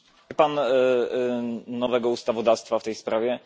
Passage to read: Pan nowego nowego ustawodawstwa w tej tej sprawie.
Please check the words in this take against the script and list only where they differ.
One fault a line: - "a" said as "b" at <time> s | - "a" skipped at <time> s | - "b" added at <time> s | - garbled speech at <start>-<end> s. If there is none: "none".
- "nowego" skipped at 2.1 s
- "tej" skipped at 2.9 s